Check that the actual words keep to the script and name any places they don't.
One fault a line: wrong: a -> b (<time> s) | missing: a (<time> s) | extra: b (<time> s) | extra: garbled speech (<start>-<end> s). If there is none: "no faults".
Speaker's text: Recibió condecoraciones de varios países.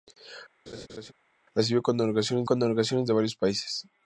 extra: condecoraciones (2.4 s)